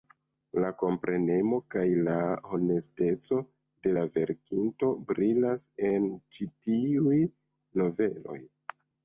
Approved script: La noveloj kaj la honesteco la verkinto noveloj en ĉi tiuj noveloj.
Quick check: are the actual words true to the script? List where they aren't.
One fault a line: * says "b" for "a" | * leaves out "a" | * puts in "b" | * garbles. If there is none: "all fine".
* says "komprenemo" for "noveloj"
* puts in "de"
* says "brilas" for "noveloj"